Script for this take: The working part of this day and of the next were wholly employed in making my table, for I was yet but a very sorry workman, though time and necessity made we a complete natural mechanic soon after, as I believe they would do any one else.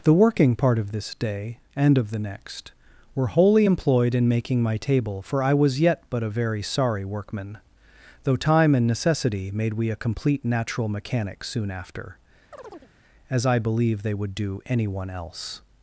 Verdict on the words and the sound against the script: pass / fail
fail